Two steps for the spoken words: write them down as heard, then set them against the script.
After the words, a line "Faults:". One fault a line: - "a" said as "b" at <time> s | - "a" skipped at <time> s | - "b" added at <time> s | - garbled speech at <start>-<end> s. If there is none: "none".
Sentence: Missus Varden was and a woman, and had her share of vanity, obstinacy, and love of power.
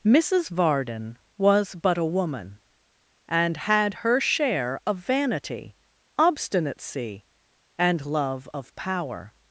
Missus Varden was but a woman, and had her share of vanity, obstinacy, and love of power.
Faults:
- "and" said as "but" at 1.8 s